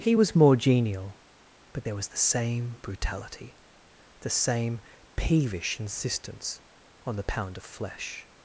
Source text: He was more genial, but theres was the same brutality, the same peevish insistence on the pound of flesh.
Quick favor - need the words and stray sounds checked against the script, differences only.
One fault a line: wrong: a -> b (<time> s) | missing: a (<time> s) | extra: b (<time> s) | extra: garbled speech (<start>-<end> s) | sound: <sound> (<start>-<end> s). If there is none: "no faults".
wrong: theres -> there (1.8 s)